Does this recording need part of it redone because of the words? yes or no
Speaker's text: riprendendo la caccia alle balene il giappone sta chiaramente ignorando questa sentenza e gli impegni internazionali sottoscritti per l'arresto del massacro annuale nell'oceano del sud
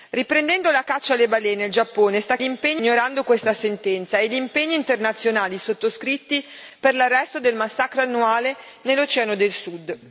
yes